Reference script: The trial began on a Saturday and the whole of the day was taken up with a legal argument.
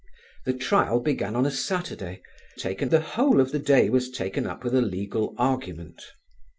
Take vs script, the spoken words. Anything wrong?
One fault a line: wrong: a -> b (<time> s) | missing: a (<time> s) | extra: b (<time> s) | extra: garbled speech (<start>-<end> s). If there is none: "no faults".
wrong: and -> taken (2.5 s)